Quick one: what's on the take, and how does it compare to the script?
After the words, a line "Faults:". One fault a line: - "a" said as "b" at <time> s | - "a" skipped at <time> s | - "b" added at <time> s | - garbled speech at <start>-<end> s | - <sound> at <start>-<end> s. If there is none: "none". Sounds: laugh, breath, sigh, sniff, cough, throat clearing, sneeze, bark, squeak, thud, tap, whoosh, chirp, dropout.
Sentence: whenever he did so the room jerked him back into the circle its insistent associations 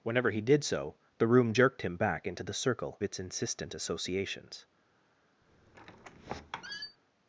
whenever he did so the room jerked him back into the circle its insistent associations
Faults:
- squeak at 5.4-7.0 s